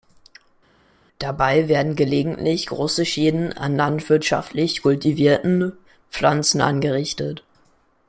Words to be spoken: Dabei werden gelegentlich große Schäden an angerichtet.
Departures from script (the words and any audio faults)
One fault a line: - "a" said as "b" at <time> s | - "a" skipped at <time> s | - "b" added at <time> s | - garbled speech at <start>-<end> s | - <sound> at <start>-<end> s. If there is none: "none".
- "landwirtschaftlich kultivierten Pflanzen" added at 3.8 s